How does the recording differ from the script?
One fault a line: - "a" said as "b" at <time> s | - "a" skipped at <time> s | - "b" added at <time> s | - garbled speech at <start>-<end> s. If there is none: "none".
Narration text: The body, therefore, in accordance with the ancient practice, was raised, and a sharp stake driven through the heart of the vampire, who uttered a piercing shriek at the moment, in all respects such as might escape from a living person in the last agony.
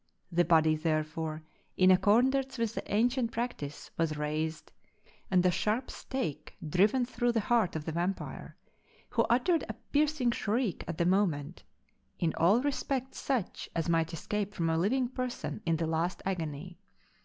none